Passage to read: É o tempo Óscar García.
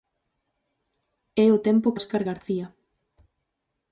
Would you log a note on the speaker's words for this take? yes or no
no